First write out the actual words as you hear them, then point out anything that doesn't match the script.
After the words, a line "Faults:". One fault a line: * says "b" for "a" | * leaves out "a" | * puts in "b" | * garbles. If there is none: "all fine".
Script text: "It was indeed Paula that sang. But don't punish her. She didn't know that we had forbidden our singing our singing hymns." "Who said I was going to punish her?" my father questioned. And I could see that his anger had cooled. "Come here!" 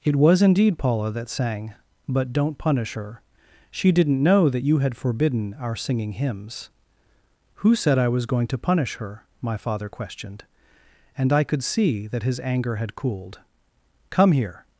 "It was indeed Paula that sang. But don't punish her. She didn't know that you had forbidden our singing hymns." "Who said I was going to punish her?" my father questioned. And I could see that his anger had cooled. "Come here!"
Faults:
* says "you" for "we"
* leaves out "our singing"